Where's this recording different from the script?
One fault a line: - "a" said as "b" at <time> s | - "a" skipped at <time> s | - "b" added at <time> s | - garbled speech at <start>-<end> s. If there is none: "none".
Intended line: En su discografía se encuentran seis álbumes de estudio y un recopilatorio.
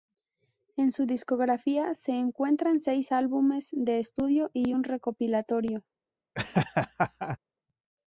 none